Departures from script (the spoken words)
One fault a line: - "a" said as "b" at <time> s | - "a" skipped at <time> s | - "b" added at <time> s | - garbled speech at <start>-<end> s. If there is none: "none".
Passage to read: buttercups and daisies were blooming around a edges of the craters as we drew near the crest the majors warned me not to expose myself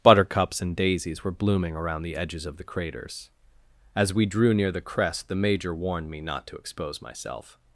- "a" said as "the" at 2.0 s
- "majors" said as "major" at 5.3 s